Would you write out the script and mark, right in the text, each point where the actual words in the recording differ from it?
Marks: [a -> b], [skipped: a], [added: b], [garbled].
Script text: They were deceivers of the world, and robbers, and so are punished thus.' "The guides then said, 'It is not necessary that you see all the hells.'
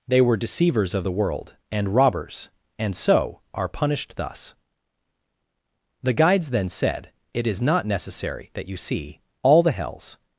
They were deceivers of the world, and robbers, and so are punished thus.' "The guides then said, 'It is not necessary that you see all the hells.'